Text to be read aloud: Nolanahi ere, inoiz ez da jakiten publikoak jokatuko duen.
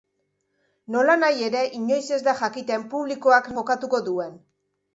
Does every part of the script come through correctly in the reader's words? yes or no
yes